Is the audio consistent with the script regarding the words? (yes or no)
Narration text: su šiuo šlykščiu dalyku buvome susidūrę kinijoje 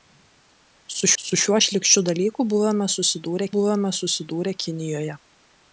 no